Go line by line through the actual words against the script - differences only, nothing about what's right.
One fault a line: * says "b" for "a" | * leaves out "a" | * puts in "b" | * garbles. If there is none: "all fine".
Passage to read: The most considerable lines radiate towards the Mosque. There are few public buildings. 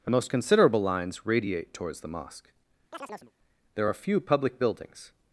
all fine